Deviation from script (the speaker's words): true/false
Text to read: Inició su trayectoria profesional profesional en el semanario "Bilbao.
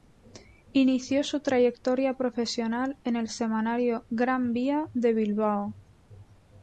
true